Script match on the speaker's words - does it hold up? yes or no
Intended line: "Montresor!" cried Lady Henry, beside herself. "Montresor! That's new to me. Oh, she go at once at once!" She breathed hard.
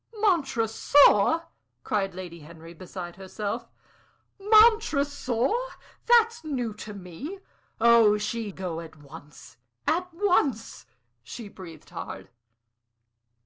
yes